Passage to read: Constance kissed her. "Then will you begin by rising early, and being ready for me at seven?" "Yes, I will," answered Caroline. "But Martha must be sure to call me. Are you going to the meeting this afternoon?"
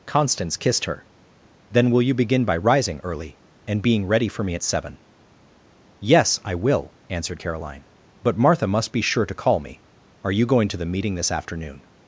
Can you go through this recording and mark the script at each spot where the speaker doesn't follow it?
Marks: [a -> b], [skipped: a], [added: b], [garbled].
Constance kissed her. "Then will you begin by rising early, and being ready for me at seven?" "Yes, I will," answered Caroline. "But Martha must be sure to call me. Are you going to the meeting this afternoon?"